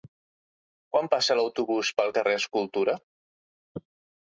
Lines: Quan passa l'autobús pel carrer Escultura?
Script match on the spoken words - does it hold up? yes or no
yes